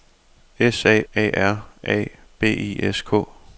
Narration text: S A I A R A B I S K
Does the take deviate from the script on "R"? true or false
false